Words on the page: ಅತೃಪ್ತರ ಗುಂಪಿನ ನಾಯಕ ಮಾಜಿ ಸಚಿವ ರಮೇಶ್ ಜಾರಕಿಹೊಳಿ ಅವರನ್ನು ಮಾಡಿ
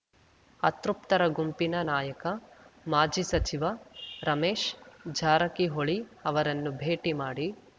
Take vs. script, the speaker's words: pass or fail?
fail